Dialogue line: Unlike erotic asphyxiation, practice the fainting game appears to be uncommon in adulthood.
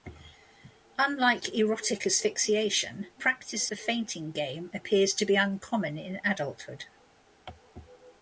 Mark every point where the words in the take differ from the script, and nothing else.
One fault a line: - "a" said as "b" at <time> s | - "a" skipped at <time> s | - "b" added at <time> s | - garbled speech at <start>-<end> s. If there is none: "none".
none